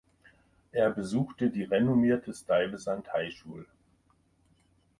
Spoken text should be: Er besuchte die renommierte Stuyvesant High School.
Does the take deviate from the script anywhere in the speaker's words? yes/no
no